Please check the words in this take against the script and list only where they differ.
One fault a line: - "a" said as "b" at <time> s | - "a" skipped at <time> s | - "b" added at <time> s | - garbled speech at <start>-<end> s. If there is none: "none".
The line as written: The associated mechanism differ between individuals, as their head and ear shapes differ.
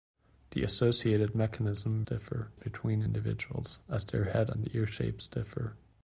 none